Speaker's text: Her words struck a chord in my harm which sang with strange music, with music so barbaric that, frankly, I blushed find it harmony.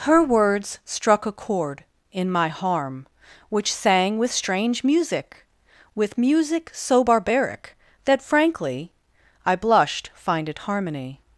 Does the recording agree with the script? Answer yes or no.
yes